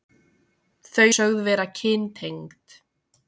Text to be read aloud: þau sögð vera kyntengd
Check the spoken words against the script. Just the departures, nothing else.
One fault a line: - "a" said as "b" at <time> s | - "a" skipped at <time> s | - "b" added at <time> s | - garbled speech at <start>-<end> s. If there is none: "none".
none